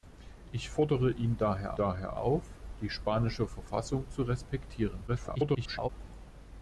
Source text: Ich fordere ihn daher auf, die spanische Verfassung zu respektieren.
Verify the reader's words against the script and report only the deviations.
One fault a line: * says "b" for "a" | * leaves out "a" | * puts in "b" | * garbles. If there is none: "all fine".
* puts in "daher"
* garbles